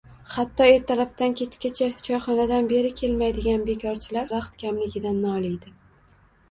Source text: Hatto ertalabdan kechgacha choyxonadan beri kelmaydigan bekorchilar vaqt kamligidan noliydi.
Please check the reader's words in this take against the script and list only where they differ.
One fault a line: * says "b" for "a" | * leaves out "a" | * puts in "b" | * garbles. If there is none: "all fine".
all fine